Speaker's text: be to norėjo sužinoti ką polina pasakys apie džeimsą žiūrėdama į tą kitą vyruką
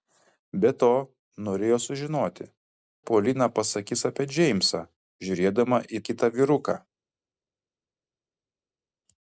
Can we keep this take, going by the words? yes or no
no